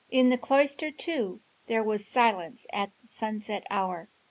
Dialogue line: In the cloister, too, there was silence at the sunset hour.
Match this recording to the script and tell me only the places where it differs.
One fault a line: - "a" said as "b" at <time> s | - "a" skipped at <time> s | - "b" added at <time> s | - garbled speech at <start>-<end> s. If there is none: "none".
none